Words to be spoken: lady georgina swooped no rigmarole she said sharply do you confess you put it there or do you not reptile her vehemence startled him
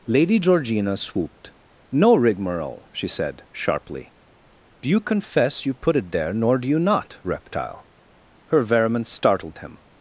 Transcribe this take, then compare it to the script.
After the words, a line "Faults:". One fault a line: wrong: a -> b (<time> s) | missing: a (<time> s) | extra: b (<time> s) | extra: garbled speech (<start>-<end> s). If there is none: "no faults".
lady georgina swooped no rigmarole she said sharply do you confess you put it there nor do you not reptile her vehemence startled him
Faults:
wrong: or -> nor (6.3 s)